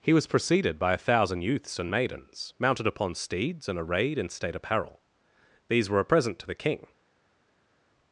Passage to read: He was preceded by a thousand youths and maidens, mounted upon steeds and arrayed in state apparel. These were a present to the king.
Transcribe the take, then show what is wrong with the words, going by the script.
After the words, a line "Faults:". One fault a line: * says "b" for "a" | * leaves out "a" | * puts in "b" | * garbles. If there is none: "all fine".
He was preceded by a thousand youths and maidens, mounted upon steeds and arrayed in state apparel. These were a present to the king.
Faults:
all fine